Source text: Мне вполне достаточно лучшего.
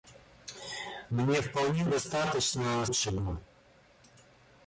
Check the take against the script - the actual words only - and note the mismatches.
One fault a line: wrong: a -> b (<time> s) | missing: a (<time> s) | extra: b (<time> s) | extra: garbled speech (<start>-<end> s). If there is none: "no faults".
no faults